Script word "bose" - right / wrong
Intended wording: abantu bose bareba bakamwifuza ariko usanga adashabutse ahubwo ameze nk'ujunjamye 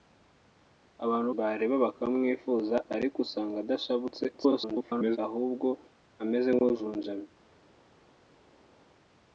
wrong